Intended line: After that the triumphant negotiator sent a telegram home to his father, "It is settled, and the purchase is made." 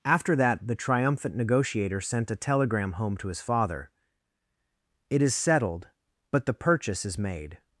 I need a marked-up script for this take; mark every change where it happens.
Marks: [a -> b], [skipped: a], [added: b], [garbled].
After that the triumphant negotiator sent a telegram home to his father, "It is settled, [and -> but] the purchase is made."